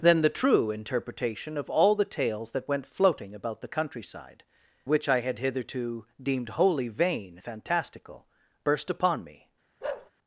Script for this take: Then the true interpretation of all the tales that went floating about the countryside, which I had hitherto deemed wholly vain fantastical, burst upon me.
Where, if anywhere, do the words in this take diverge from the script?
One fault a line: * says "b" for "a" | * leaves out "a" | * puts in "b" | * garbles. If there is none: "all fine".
all fine